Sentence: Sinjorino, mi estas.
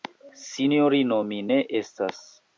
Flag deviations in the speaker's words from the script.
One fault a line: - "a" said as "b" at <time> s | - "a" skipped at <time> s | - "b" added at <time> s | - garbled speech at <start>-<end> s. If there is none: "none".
- "ne" added at 1.5 s